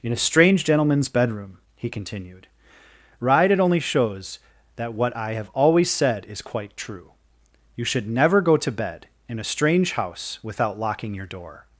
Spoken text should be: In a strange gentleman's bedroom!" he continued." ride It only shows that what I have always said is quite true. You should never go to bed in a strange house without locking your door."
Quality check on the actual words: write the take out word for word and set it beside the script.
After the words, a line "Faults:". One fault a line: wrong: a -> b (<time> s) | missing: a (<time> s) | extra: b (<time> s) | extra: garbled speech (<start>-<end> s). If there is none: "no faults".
In a strange gentleman's bedroom!" he continued." ride It only shows that what I have always said is quite true. You should never go to bed in a strange house without locking your door."
Faults:
no faults